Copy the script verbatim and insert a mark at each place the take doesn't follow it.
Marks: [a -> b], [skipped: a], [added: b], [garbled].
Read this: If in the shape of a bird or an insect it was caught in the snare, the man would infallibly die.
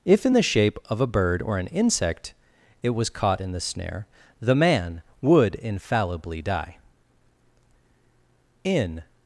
If in the shape of a bird or an insect it was caught in the snare, the man would infallibly die. [added: In]